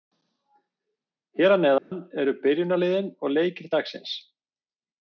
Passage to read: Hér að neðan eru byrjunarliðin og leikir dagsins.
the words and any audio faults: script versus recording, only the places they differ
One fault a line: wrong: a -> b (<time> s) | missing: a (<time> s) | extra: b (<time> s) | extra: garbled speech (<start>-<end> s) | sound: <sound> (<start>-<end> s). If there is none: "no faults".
sound: dropout (1.8-1.9 s)